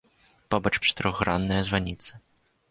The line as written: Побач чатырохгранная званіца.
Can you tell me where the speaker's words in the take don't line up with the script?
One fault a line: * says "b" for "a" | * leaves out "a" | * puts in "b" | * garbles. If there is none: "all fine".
all fine